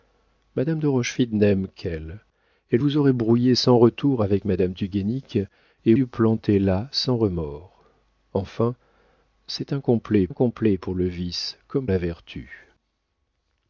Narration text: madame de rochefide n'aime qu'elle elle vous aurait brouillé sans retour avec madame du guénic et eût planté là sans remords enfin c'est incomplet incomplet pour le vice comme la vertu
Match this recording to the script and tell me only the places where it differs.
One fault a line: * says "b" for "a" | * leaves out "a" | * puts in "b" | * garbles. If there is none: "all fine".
all fine